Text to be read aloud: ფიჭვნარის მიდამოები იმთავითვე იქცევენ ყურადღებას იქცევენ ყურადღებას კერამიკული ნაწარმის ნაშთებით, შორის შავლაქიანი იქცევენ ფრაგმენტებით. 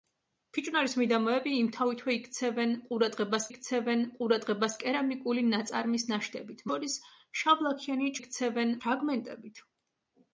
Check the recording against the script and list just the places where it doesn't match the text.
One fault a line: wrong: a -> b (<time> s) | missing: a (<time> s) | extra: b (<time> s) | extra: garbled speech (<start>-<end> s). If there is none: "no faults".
no faults